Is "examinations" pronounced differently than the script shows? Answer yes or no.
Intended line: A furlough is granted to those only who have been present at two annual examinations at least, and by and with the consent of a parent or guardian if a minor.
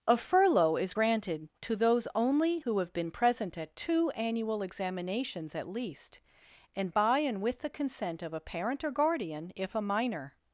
no